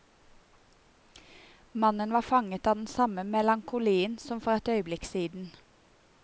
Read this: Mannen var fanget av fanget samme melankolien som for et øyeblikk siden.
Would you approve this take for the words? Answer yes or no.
no